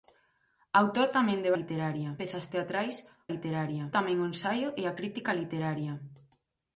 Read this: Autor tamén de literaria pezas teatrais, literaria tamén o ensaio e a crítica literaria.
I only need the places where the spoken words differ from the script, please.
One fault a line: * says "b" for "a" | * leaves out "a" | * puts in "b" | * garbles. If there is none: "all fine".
all fine